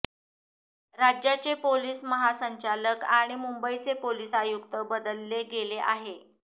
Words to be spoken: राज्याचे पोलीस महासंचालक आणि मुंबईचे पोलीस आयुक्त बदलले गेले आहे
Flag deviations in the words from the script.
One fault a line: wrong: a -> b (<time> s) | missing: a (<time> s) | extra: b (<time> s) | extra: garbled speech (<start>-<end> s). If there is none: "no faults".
no faults